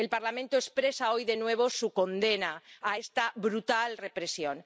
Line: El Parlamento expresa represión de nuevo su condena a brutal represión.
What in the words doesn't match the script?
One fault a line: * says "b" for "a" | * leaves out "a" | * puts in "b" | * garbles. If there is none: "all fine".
* says "hoy" for "represión"
* puts in "esta"